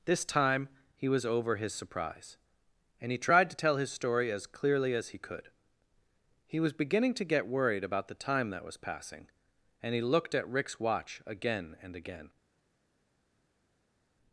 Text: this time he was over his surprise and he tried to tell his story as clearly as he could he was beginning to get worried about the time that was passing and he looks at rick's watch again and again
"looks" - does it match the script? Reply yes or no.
no